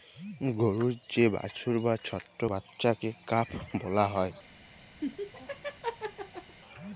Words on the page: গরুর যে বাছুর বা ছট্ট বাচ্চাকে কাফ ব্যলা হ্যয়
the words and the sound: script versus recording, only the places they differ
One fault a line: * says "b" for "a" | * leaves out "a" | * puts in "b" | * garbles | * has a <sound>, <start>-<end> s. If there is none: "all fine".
* has a laugh, 5.0-6.6 s